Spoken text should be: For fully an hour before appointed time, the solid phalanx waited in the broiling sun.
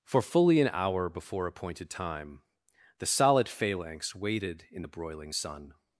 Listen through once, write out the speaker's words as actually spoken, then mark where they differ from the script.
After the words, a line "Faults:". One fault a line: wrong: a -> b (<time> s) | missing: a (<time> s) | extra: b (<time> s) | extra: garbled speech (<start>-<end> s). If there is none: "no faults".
For fully an hour before appointed time, the solid phalanx waited in the broiling sun.
Faults:
no faults